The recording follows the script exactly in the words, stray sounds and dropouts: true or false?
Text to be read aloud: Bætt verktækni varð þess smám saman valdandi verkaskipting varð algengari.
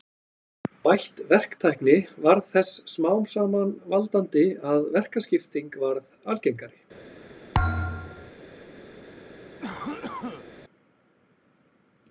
false